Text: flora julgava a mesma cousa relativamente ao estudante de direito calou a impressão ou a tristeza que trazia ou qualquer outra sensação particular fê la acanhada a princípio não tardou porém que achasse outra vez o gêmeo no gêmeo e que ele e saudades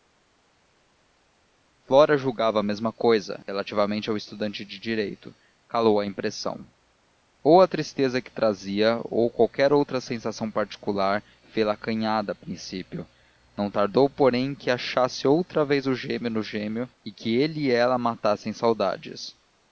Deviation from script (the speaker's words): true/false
true